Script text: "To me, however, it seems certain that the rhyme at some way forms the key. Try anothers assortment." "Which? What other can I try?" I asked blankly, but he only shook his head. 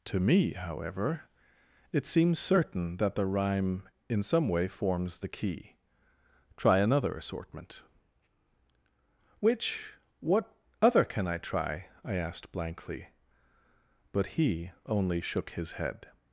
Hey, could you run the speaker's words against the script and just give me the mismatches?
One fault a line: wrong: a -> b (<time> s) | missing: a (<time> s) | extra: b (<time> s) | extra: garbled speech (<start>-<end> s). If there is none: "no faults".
wrong: at -> in (4.1 s)
wrong: anothers -> another (6.8 s)